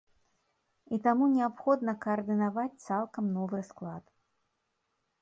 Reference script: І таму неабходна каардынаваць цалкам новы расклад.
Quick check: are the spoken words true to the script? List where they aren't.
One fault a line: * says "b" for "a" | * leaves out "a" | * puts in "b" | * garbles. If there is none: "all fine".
all fine